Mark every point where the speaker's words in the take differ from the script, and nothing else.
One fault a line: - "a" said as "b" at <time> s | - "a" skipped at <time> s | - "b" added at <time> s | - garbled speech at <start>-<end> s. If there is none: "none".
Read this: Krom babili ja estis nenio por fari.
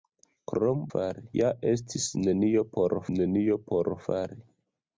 - "babili" said as "fari" at 0.9 s
- "nenio por" added at 3.2 s